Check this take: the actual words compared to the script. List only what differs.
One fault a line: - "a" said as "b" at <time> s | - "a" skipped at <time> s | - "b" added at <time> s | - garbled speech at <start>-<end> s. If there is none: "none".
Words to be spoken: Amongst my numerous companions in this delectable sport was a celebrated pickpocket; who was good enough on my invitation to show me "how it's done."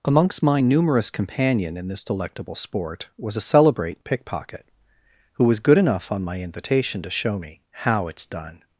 - "companions" said as "companion" at 1.1 s
- "celebrated" said as "celebrate" at 3.4 s